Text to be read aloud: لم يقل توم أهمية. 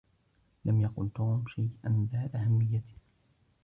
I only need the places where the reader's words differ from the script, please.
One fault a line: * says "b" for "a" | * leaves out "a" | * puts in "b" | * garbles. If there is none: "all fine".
* puts in "شيئا ذا"